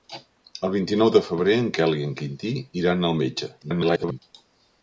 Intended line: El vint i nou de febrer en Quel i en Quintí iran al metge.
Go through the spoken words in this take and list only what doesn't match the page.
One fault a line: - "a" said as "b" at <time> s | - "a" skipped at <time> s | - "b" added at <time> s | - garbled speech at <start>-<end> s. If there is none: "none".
- garbled speech at 3.6-4.2 s